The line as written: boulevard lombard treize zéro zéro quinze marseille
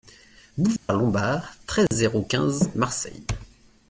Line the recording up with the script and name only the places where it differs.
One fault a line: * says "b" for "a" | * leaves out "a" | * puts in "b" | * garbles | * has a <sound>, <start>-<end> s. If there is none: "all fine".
* has a dropout, 0.8-0.9 s
* has a dropout, 1.9-1.9 s
* leaves out "zéro"